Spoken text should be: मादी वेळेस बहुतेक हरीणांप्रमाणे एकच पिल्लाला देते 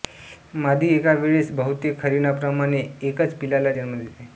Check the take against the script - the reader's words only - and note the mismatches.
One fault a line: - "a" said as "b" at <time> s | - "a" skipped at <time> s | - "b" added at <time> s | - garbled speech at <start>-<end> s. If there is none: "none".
- "एका" added at 0.9 s
- "जन्म" added at 3.7 s